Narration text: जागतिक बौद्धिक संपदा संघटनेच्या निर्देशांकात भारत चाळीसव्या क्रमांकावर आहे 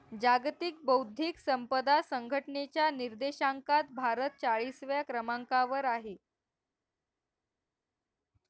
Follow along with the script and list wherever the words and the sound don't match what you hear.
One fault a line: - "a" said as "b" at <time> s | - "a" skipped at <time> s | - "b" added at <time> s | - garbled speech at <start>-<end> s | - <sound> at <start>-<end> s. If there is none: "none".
none